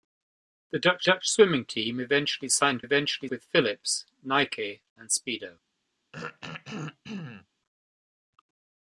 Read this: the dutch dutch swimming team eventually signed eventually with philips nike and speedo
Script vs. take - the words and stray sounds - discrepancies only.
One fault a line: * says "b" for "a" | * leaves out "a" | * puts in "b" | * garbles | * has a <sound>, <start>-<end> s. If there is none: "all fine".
* has a throat clearing, 6.1-7.5 s